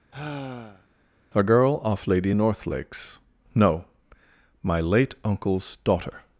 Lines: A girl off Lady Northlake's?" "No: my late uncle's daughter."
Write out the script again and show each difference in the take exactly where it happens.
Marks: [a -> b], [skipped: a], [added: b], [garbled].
A girl off Lady Northlake's?" "No: my late uncle's daughter."